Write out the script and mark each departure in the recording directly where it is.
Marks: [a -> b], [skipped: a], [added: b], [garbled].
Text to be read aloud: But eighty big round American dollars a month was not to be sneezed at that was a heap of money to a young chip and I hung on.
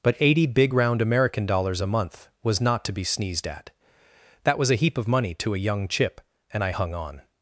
But eighty big round American dollars a month was not to be sneezed at that was a heap of money to a young chip and I hung on.